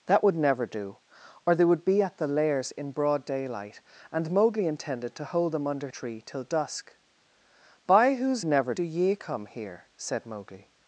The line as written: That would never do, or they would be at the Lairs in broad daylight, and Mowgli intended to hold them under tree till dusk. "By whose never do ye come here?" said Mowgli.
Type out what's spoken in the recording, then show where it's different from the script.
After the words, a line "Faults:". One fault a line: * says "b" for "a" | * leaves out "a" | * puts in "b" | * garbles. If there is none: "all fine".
That would never do, or they would be at the Lairs in broad daylight, and Mowgli intended to hold them under tree till dusk. "By whose never do ye come here?" said Mowgli.
Faults:
all fine